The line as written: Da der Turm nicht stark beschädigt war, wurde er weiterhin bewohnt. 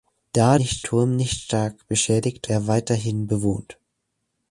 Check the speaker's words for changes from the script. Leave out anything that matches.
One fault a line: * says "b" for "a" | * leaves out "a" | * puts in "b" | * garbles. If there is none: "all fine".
* says "nicht" for "der"
* leaves out "war wurde"